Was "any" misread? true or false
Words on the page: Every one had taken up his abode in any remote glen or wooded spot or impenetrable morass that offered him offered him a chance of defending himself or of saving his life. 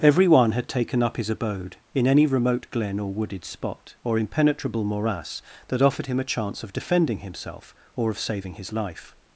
false